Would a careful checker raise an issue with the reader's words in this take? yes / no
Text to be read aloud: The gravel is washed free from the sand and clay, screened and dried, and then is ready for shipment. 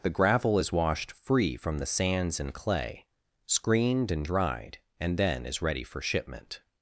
yes